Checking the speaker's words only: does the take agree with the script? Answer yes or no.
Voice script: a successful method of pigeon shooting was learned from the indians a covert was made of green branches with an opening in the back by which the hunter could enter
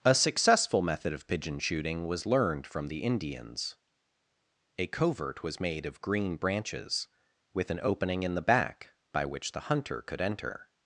yes